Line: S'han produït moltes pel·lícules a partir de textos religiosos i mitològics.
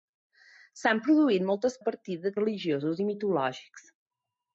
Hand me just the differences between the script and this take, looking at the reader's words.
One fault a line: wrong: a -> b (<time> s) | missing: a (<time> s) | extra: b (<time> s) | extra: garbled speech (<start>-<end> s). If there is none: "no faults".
missing: pel·lícules (1.8 s)
missing: textos (2.3 s)